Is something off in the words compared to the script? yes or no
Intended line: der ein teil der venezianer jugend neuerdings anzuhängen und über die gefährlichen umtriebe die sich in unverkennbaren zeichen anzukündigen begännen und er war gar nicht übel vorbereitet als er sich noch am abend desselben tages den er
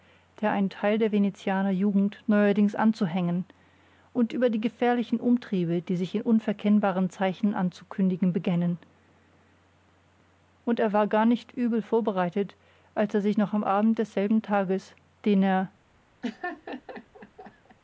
no